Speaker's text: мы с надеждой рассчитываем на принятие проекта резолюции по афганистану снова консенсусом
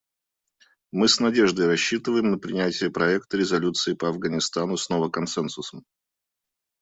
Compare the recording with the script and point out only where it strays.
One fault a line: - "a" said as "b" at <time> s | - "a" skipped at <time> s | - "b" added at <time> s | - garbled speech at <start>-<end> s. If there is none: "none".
none